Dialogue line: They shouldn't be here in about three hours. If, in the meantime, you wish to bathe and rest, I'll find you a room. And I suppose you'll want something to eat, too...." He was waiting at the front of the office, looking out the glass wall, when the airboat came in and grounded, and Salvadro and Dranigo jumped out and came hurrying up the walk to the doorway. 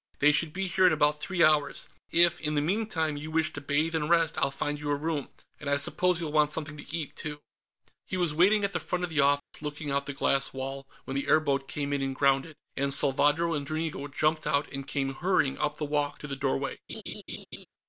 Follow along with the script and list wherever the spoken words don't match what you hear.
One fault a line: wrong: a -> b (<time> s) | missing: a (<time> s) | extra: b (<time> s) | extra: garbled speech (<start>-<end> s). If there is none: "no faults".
wrong: shouldn't -> should (0.3 s)